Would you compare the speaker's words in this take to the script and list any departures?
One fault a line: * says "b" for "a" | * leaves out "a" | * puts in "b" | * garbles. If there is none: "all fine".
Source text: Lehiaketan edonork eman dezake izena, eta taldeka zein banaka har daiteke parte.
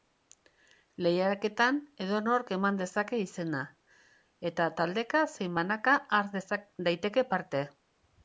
all fine